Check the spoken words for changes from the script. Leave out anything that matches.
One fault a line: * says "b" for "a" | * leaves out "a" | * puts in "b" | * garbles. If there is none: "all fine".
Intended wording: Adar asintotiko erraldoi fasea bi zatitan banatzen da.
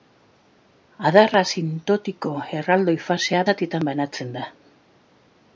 * leaves out "bi"